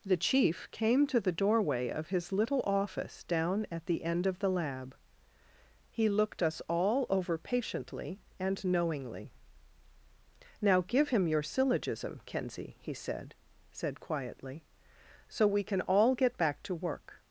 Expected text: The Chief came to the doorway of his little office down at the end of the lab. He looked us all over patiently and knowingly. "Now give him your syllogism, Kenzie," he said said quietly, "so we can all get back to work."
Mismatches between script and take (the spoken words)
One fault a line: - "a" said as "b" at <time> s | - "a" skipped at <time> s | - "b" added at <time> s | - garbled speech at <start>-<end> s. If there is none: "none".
none